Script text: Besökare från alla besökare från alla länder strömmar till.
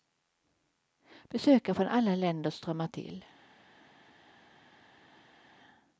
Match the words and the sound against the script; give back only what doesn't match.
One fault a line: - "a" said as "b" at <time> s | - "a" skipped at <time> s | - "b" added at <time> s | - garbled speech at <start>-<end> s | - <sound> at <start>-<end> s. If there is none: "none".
- "besökare från alla" skipped at 2.1 s